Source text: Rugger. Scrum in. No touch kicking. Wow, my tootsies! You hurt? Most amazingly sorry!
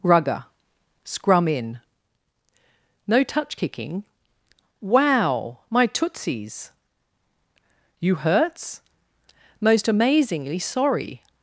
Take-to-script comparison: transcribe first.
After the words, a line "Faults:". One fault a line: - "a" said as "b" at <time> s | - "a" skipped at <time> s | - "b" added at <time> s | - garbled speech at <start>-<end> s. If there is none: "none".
Rugger. Scrum in. No touch kicking. Wow, my tootsies! You hurts? Most amazingly sorry!
Faults:
- "hurt" said as "hurts" at 8.2 s